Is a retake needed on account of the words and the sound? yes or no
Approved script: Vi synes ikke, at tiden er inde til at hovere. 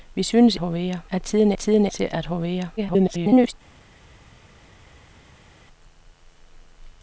yes